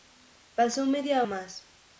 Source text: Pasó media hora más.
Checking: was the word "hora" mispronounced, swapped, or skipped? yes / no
yes